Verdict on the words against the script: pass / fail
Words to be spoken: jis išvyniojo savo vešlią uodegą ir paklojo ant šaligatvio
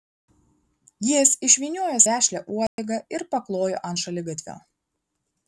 fail